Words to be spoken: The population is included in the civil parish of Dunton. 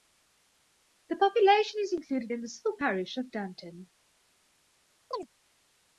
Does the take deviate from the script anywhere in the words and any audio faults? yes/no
yes